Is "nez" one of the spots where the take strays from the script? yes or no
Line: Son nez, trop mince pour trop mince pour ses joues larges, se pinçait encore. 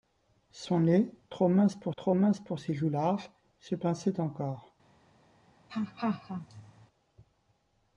no